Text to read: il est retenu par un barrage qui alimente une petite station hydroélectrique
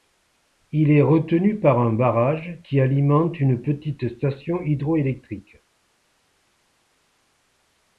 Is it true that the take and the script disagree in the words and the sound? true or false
false